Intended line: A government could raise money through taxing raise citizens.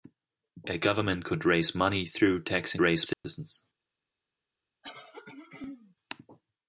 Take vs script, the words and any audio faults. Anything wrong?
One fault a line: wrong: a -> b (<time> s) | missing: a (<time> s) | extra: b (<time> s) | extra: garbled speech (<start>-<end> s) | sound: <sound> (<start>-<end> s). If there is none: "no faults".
sound: dropout (3.1-3.2 s)
sound: throat clearing (4.8-6.0 s)